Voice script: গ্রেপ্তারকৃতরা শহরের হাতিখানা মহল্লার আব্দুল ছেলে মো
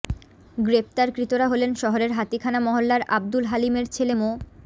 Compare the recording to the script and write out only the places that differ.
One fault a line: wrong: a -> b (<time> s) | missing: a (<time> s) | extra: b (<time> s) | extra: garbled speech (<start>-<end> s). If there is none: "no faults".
extra: হলেন (1.5 s)
extra: হালিমের (3.5 s)